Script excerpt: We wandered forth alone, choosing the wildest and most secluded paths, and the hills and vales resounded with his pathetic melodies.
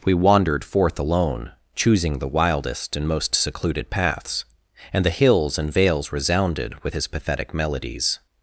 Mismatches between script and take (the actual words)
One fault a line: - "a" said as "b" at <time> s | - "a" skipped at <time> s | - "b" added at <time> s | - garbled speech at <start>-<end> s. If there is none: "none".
none